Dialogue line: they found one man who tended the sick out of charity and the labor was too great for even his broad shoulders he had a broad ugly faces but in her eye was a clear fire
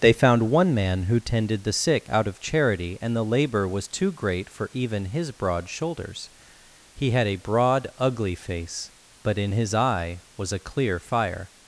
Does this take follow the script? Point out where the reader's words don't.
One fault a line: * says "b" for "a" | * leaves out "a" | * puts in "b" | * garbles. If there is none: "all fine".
* says "face" for "faces"
* says "his" for "her"